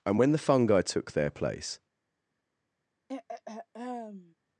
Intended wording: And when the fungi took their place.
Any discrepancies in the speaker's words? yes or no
no